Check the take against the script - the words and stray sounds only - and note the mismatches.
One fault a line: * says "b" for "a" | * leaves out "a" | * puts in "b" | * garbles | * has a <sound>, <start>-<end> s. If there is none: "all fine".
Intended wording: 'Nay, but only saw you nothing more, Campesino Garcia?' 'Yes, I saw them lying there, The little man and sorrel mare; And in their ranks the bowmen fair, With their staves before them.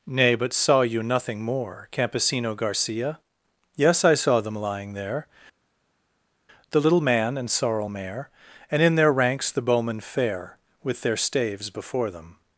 * leaves out "only"